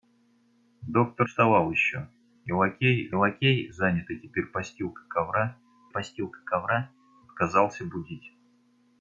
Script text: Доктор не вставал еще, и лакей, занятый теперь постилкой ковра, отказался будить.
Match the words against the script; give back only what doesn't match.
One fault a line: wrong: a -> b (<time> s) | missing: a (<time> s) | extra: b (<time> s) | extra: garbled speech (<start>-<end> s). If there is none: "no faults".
missing: не (1.3 s)
extra: лакей (3.1 s)
extra: постилкой ковра (5.9 s)